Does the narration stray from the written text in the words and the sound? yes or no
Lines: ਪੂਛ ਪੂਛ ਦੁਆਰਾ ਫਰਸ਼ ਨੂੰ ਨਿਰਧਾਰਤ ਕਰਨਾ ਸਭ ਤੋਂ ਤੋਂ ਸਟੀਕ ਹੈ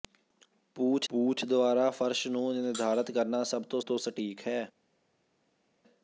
no